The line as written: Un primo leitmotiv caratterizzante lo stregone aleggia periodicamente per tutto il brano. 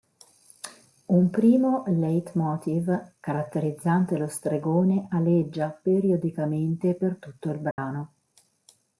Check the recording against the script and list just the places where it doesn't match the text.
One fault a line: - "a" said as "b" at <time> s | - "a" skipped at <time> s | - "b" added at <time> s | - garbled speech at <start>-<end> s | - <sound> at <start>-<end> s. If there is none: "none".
- dropout at 7.7-7.8 s